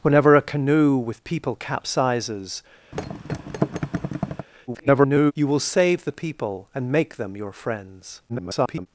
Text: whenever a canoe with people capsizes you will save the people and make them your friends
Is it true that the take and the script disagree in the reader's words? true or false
true